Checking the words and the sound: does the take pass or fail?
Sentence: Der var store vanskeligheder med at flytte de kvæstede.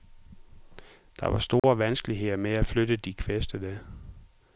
fail